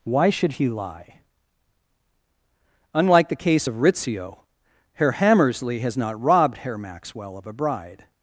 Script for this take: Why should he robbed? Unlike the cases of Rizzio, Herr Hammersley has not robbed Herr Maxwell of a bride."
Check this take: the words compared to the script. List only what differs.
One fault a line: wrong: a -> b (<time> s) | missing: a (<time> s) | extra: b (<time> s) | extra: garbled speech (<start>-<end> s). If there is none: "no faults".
wrong: robbed -> lie (0.7 s)
wrong: cases -> case (3.4 s)